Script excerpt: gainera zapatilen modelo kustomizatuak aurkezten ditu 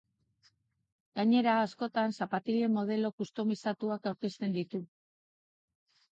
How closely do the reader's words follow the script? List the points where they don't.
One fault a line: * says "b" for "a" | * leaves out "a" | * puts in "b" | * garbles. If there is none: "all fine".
* puts in "askotan"